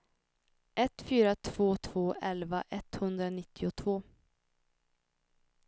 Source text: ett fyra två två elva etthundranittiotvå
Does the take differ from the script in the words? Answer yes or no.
no